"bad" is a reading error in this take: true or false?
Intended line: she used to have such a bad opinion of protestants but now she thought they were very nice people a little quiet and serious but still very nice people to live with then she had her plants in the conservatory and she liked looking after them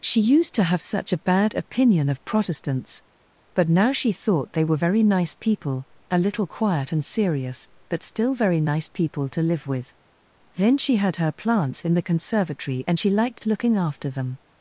false